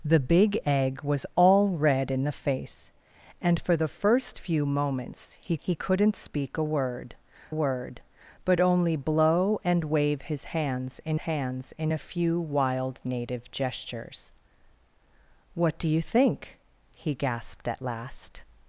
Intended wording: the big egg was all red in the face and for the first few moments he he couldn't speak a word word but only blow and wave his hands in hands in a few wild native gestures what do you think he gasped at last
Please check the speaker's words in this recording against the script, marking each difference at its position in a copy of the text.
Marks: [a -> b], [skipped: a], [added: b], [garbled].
the big egg was all red in the face and for the first few moments he he couldn't speak a word word but only blow and wave his hands in hands in a few wild native gestures what do you think he gasped at last